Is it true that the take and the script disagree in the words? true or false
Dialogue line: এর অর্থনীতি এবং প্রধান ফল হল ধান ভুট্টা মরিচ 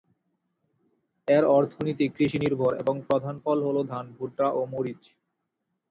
true